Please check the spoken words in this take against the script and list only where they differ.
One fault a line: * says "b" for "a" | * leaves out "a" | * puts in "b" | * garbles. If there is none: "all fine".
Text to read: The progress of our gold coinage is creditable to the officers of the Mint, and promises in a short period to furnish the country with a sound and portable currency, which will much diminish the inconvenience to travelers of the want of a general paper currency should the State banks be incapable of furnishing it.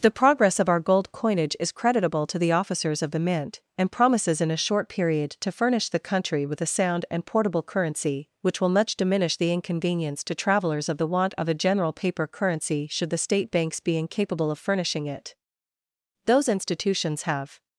* puts in "Those institutions have"